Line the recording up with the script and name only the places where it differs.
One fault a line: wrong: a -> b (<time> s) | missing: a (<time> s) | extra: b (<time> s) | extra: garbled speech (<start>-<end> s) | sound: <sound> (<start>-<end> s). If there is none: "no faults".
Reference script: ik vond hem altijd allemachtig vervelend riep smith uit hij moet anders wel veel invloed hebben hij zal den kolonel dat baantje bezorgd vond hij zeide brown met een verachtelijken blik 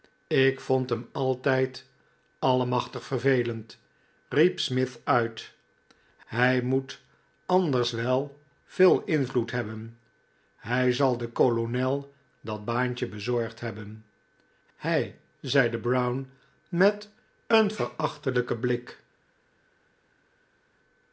wrong: vond -> hebben (13.6 s)